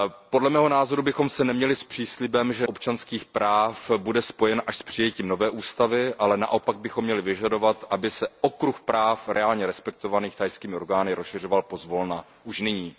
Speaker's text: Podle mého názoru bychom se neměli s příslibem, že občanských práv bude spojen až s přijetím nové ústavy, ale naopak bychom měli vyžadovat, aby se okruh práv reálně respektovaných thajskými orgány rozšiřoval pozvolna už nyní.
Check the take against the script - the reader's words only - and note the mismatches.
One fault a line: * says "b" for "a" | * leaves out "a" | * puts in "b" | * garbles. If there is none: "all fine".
all fine